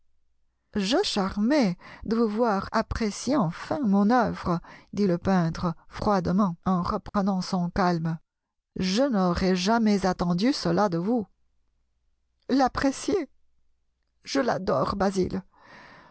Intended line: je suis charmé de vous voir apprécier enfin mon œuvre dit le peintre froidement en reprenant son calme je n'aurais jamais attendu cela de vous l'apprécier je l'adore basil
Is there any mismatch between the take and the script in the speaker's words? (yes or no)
yes